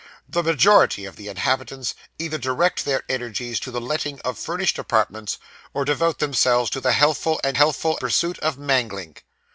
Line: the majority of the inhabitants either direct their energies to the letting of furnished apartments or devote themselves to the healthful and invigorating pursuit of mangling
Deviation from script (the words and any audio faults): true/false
true